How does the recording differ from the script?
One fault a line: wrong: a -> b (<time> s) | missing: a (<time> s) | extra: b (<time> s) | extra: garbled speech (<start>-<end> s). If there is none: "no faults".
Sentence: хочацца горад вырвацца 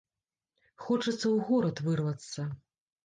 extra: ў (1.1 s)